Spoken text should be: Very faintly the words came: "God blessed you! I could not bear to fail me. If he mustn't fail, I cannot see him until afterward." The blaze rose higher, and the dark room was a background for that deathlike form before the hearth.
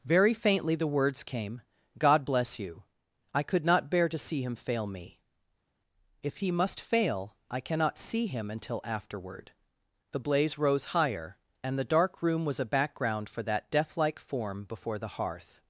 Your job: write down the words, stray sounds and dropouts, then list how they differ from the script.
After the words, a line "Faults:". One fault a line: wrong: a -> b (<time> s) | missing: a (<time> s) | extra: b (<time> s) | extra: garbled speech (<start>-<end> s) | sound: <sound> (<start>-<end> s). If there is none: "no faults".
Very faintly the words came: "God bless you! I could not bear to see him fail me. If he must fail, I cannot see him until afterward." The blaze rose higher, and the dark room was a background for that deathlike form before the hearth.
Faults:
wrong: blessed -> bless (2.2 s)
extra: see him (4.2 s)
wrong: mustn't -> must (6.5 s)